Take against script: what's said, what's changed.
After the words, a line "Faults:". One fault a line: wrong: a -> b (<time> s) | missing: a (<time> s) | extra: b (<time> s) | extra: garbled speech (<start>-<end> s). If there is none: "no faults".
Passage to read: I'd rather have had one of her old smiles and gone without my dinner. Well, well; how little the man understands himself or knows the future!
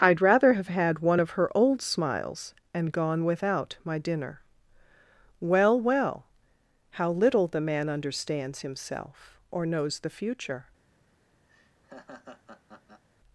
I'd rather have had one of her old smiles and gone without my dinner. Well, well; how little the man understands himself or knows the future!
Faults:
no faults